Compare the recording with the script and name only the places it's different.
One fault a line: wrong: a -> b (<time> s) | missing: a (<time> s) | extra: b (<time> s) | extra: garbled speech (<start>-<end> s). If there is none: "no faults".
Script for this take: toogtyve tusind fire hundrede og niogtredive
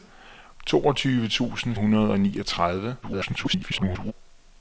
missing: fire (1.8 s)
extra: garbled speech (3.0-4.1 s)